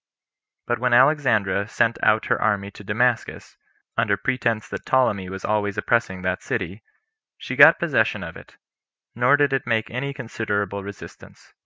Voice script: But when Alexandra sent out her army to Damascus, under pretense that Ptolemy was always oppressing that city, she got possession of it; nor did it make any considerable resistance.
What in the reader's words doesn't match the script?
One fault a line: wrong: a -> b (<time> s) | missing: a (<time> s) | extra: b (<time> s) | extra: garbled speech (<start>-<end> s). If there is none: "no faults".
no faults